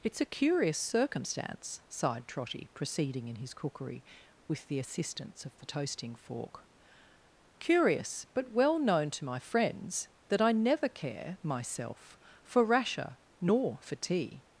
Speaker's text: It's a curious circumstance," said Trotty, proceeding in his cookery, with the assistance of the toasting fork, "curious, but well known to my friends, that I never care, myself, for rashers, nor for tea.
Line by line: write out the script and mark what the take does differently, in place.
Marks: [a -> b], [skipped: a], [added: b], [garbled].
It's a curious circumstance," [said -> sighed] Trotty, proceeding in his cookery, with the assistance of the toasting fork, "curious, but well known to my friends, that I never care, myself, for [rashers, -> rasher] nor for tea.